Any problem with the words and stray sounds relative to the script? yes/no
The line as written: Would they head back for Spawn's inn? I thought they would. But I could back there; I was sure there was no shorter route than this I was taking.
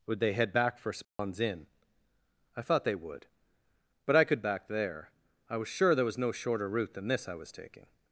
yes